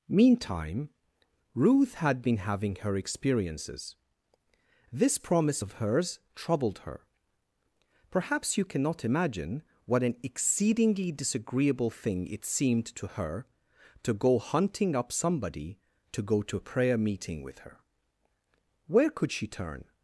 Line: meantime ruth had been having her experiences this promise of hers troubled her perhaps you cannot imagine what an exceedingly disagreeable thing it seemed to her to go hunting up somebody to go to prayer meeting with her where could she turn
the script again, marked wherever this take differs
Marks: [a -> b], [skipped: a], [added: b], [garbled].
meantime ruth had been having her experiences this promise of hers troubled her perhaps you cannot imagine what an exceedingly disagreeable thing it seemed to her to go hunting up somebody to go to [added: a] prayer meeting with her where could she turn